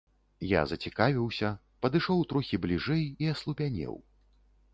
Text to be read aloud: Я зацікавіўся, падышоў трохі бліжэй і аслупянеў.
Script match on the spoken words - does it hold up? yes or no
yes